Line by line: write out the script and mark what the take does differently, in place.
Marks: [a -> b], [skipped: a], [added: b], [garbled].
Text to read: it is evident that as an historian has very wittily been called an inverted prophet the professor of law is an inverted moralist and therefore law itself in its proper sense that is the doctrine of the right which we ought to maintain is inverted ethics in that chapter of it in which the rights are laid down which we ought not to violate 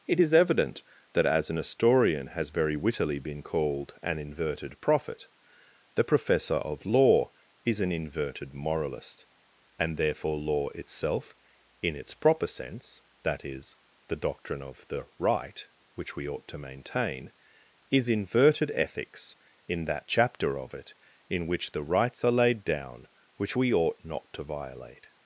it is evident that as an historian has very wittily been called an inverted prophet the professor of law is an inverted moralist and therefore law itself in its proper sense that is the doctrine of the right which we ought to maintain is inverted ethics in that chapter of it in which the rights are laid down which we ought not to violate